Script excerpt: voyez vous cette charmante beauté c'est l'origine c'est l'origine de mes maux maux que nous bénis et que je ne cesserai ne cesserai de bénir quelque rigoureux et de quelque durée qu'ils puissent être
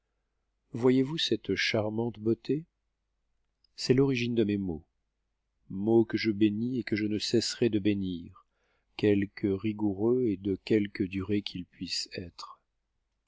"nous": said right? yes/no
no